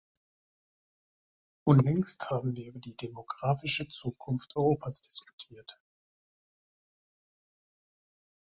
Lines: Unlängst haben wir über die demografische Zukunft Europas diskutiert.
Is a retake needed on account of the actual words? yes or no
no